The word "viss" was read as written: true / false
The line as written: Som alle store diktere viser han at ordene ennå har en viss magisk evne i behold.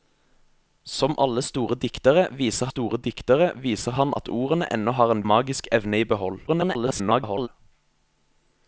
false